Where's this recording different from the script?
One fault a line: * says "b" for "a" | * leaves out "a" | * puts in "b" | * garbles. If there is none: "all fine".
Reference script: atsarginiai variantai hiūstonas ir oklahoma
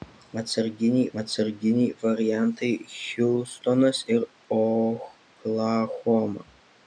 * puts in "atsarginiai"